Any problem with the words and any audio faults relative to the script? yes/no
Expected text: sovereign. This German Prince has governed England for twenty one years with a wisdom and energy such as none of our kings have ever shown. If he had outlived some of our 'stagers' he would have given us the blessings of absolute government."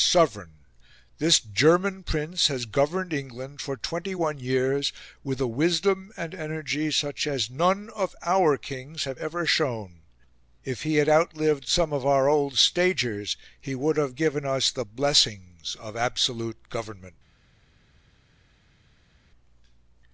yes